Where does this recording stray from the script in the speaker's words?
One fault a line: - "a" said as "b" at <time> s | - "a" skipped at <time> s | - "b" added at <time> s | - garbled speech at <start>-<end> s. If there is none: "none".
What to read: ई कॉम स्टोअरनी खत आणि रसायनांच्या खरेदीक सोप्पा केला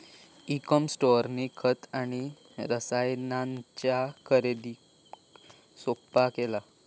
none